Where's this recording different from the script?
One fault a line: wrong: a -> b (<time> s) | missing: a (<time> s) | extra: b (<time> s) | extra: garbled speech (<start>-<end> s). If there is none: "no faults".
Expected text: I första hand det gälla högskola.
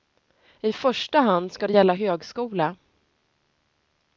extra: ska (1.5 s)